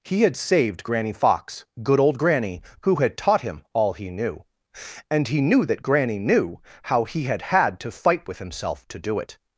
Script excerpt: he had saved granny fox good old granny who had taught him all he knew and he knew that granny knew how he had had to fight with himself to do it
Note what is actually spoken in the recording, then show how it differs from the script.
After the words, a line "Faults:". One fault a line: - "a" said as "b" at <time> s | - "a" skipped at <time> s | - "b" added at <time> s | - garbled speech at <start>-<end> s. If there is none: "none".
he had saved granny fox good old granny who had taught him all he knew and he knew that granny knew how he had had to fight with himself to do it
Faults:
none